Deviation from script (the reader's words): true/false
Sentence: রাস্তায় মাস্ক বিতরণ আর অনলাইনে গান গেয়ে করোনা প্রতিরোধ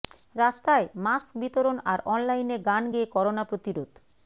false